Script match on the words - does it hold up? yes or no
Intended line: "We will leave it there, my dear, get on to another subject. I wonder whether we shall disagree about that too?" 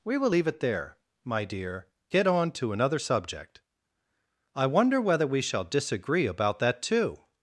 yes